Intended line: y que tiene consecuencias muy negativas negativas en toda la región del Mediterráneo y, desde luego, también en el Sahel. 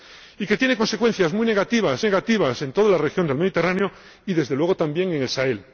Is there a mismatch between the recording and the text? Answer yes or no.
no